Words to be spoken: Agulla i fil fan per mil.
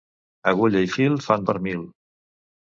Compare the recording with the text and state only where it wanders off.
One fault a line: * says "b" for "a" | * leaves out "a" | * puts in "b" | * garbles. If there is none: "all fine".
all fine